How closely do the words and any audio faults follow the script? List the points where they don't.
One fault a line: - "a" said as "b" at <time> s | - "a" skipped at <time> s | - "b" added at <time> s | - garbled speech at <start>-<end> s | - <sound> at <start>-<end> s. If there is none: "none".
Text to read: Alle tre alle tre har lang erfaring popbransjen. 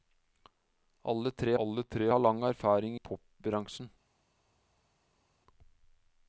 none